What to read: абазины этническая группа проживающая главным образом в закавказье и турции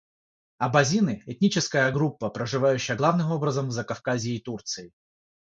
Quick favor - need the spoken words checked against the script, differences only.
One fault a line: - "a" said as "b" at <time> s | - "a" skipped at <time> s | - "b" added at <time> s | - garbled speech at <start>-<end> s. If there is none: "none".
none